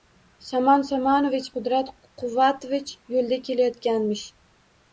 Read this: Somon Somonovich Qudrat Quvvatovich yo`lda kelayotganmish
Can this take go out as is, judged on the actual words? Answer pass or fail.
pass